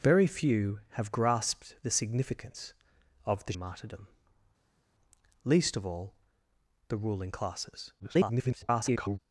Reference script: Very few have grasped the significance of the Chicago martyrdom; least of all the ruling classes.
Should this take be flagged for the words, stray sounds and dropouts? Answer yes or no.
yes